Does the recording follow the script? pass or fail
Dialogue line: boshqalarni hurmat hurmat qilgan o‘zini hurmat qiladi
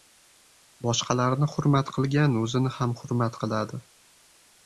fail